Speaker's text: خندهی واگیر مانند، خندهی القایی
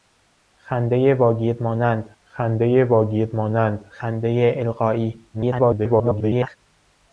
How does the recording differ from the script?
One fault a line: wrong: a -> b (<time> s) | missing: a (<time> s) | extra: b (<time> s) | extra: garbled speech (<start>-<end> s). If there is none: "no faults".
extra: واگیر مانند خندهی (2.8 s)
extra: garbled speech (5.3-6.6 s)